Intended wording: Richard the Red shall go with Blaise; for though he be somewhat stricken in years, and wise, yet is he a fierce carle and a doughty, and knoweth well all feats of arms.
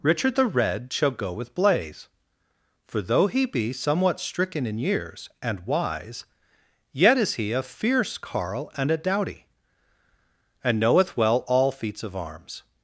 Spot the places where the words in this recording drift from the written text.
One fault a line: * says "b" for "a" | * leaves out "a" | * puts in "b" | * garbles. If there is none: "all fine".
all fine